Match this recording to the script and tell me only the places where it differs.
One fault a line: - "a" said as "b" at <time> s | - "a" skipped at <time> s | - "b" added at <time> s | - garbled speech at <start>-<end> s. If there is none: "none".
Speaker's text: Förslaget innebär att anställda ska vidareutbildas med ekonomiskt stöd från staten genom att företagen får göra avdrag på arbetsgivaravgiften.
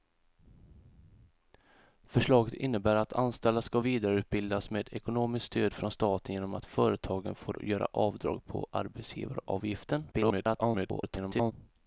- garbled speech at 10.1-11.5 s